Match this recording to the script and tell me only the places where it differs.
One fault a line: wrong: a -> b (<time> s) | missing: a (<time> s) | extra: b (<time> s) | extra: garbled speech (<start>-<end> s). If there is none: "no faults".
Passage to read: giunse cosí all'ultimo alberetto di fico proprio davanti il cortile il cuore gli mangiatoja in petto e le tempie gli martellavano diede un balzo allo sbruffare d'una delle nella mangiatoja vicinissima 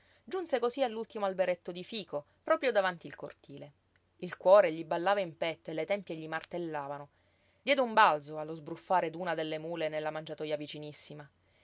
wrong: mangiatoja -> ballava (4.8 s)
extra: mule (9.6 s)